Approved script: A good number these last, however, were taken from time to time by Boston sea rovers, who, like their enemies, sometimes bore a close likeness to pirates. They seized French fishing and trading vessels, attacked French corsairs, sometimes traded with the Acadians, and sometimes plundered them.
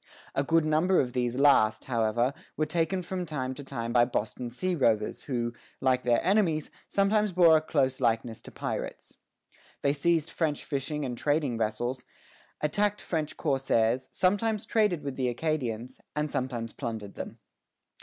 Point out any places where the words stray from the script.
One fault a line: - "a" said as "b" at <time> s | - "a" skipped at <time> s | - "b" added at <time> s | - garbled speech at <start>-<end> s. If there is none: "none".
- "of" added at 1.0 s